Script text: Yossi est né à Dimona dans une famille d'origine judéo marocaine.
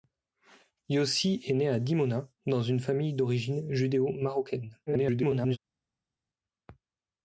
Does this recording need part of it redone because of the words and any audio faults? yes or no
yes